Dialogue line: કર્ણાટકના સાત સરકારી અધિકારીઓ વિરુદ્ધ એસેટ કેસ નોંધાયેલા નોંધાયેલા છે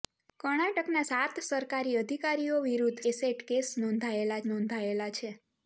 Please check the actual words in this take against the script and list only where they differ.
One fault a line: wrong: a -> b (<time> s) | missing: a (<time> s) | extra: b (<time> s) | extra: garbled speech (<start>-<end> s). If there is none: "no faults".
no faults